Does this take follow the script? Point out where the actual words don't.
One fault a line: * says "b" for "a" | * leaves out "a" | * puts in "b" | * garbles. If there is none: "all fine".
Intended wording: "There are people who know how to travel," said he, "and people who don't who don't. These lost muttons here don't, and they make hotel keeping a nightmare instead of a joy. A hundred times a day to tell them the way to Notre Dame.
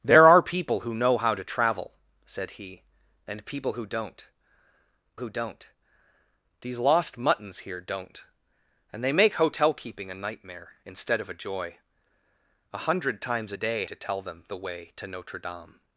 all fine